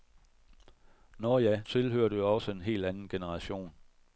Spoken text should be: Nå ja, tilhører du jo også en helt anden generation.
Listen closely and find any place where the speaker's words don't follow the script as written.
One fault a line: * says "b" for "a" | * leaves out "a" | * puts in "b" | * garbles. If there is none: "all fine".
all fine